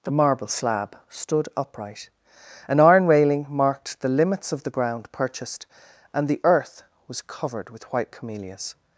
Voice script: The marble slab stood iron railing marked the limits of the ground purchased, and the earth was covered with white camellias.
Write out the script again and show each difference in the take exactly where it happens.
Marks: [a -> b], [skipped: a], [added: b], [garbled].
The marble slab stood [added: upright an] iron railing marked the limits of the ground purchased, and the earth was covered with white camellias.